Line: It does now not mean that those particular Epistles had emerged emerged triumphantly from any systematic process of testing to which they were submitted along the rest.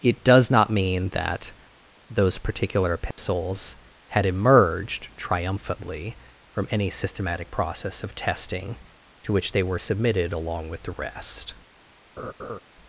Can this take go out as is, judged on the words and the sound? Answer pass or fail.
fail